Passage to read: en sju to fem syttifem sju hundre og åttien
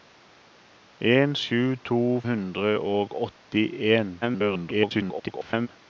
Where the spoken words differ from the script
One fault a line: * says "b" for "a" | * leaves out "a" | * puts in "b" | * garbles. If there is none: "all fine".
* leaves out "fem syttifem sju"
* garbles